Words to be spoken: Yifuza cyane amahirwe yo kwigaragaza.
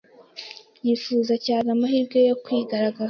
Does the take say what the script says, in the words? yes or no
yes